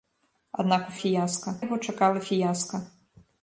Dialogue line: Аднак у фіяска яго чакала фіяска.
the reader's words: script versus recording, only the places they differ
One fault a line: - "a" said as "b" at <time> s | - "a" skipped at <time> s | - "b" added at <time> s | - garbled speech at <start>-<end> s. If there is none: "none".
none